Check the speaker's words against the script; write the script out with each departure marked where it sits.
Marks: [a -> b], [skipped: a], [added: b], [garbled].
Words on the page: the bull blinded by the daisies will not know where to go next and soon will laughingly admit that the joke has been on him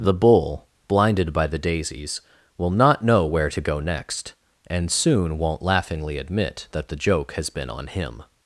the bull blinded by the daisies will not know where to go next and soon [will -> won't] laughingly admit that the joke has been on him